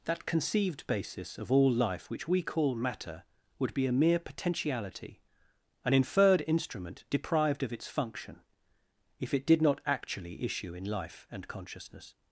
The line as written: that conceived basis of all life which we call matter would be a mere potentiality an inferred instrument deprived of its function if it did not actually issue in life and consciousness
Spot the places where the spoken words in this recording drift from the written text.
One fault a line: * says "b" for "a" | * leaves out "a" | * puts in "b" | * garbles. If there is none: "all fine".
all fine